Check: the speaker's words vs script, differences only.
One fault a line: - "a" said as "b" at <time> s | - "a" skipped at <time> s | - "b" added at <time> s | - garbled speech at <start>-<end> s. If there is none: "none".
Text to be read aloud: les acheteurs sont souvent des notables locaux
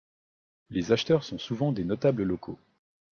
none